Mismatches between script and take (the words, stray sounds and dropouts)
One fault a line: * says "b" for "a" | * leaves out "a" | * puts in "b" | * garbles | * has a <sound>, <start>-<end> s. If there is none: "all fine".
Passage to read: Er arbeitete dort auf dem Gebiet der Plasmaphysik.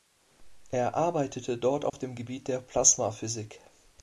* has a dropout, 1.9-1.9 s